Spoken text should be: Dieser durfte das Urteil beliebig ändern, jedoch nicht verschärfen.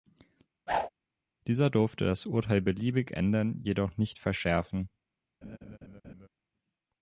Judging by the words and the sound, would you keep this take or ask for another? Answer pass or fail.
fail